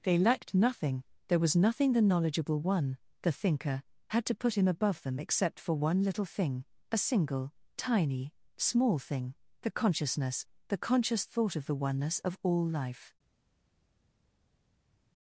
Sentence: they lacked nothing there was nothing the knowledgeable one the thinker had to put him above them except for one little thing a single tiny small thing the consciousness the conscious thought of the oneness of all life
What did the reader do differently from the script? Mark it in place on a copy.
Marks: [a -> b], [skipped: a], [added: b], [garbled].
they lacked nothing there was nothing the knowledgeable one the thinker had to put him above them except for one little thing a single tiny small thing the consciousness the conscious thought of the oneness of all life